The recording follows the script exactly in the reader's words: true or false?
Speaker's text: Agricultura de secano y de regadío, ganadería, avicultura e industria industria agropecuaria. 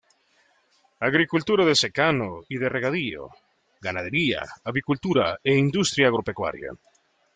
false